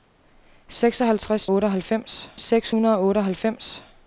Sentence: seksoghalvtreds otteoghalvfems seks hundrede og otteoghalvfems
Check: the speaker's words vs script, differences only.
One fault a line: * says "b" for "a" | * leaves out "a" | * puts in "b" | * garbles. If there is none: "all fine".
all fine